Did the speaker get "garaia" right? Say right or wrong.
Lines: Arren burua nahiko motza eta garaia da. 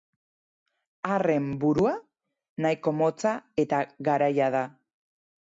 right